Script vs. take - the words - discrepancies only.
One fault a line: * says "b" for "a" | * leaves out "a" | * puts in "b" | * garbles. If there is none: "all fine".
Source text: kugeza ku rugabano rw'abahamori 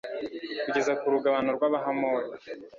all fine